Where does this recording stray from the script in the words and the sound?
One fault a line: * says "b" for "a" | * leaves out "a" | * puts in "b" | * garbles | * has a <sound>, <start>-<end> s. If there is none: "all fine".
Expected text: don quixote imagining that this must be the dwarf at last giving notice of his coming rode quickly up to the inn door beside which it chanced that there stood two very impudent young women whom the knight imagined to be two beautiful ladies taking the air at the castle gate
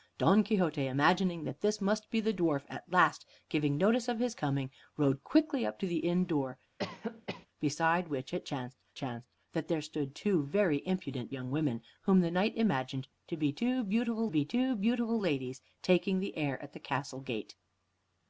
* has a cough, 6.8-7.5 s
* puts in "chanced"
* puts in "be two beautiful"